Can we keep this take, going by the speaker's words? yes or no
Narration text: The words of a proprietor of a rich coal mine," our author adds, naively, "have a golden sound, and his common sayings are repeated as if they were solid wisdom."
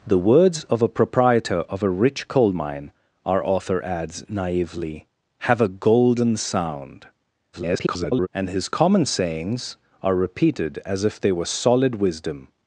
no